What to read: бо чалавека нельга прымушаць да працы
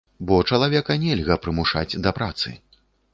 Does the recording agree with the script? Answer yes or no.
yes